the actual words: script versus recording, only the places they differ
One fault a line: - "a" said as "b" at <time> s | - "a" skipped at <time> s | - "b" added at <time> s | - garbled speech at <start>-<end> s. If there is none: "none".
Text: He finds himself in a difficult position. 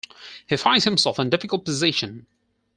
none